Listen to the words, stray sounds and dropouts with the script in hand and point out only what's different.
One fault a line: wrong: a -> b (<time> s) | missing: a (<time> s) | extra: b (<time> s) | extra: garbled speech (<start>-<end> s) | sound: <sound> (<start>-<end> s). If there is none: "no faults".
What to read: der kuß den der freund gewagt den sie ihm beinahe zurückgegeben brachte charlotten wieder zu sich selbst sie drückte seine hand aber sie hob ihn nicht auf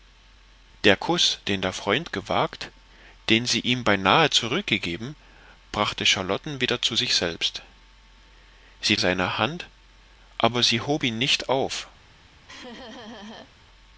missing: drückte (9.0 s)
sound: laugh (12.5-13.5 s)